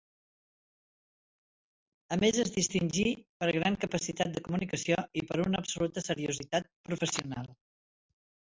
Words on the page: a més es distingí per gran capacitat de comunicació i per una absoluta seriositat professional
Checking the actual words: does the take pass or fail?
pass